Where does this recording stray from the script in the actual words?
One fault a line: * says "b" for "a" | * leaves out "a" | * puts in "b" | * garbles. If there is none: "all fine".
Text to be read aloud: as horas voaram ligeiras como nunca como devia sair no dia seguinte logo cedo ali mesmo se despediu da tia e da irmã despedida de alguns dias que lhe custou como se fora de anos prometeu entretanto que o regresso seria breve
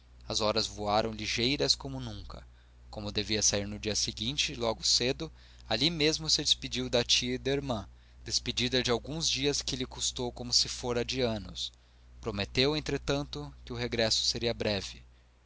all fine